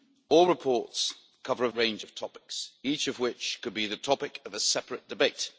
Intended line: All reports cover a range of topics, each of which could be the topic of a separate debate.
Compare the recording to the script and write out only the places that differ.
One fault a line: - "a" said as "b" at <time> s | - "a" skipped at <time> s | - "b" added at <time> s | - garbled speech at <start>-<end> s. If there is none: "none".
none